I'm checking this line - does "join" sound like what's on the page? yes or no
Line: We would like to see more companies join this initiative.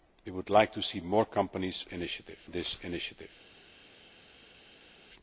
no